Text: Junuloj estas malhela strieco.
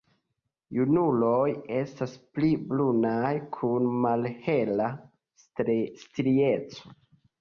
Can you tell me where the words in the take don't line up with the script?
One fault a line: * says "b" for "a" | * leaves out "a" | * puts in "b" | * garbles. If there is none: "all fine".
* puts in "pli brunaj kun"